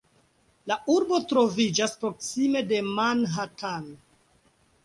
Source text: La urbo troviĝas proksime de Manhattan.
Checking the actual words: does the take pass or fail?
pass